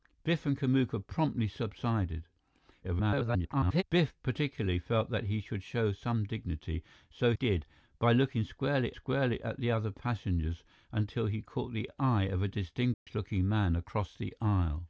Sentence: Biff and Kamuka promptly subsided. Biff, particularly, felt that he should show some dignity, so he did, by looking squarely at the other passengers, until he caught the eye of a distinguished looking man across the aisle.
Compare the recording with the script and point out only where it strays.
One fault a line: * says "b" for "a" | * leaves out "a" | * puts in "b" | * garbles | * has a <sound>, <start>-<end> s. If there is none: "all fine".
* garbles
* leaves out "he"
* puts in "squarely"
* has a dropout, 12.9-13.1 s